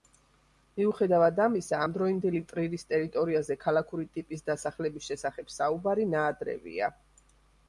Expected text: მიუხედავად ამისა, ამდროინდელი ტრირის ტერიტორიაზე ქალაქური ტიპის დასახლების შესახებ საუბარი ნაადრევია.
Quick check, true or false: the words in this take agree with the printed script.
true